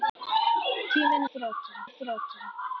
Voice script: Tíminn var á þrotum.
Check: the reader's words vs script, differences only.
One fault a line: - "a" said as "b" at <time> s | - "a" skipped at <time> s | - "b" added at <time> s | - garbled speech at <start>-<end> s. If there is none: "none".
- "var" said as "þrotum" at 1.3 s